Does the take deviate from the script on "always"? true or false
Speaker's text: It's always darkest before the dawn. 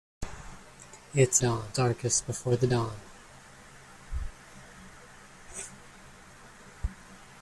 true